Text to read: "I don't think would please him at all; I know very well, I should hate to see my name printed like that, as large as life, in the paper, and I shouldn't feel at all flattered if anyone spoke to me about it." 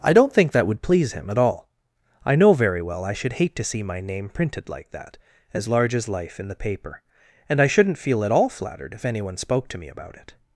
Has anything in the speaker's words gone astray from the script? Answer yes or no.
yes